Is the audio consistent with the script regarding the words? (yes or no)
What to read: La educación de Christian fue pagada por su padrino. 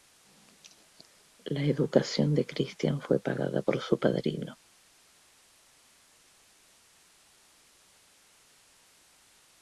yes